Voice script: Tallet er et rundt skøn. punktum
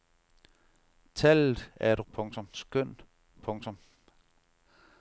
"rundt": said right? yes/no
no